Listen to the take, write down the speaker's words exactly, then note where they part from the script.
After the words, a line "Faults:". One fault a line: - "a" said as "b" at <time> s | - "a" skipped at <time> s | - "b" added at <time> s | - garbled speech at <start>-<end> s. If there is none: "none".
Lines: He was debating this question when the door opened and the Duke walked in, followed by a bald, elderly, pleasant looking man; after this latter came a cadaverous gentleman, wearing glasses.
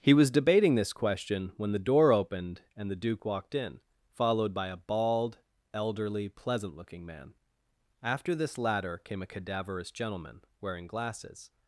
He was debating this question when the door opened and the Duke walked in, followed by a bald, elderly, pleasant looking man; after this latter came a cadaverous gentleman, wearing glasses.
Faults:
none